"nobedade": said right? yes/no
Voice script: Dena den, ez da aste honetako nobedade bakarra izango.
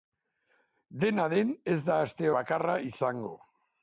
no